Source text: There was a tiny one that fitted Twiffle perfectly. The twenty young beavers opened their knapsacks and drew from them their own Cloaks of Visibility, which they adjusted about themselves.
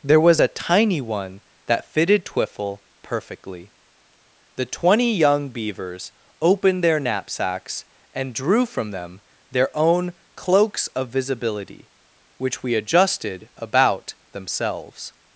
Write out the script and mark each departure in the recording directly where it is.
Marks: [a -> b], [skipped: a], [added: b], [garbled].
There was a tiny one that fitted Twiffle perfectly. The twenty young beavers opened their knapsacks and drew from them their own Cloaks of Visibility, which [they -> we] adjusted about themselves.